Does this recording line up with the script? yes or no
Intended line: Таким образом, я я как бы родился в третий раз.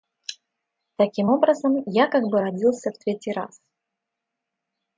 no